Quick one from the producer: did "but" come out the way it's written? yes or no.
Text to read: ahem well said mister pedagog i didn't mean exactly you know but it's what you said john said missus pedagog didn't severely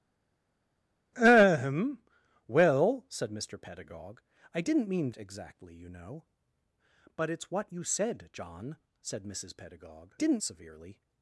yes